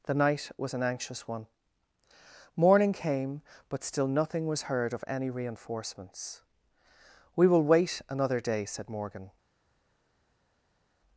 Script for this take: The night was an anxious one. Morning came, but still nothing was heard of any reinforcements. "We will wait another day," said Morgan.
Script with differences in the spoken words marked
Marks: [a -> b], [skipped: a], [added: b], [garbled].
The night was an anxious one. Morning came, but still nothing was heard of any reinforcements. "We will wait another day," said Morgan.